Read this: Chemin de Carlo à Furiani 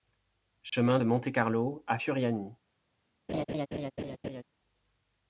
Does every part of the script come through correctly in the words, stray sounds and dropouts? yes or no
no